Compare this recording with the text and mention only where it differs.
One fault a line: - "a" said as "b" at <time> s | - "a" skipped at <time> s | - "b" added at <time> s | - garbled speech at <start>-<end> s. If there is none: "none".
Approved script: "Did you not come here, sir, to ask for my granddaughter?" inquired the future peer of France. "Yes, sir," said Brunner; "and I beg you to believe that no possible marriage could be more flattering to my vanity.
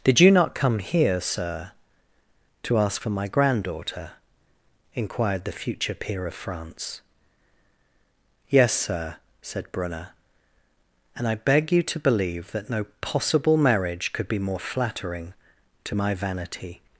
none